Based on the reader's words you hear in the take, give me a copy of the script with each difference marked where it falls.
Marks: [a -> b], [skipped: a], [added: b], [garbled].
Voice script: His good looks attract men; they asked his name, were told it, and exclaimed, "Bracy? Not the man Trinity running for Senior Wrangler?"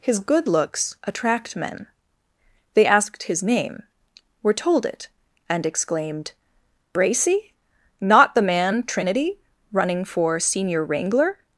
His good looks attract men; they asked his name, were told it, and exclaimed, "Bracy? Not the man Trinity running for Senior Wrangler?"